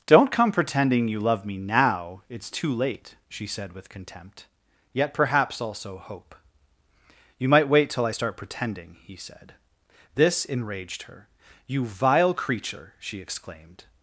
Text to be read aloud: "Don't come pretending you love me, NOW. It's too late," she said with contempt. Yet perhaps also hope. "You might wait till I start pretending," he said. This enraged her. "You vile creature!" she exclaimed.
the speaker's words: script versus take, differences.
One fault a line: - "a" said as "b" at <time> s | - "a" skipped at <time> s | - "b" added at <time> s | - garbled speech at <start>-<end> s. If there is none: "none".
none